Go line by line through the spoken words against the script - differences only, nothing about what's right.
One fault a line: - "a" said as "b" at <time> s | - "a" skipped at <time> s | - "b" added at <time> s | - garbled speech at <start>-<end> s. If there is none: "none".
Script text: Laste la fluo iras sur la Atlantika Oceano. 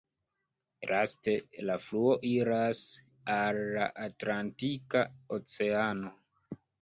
- "sur" said as "al" at 3.4 s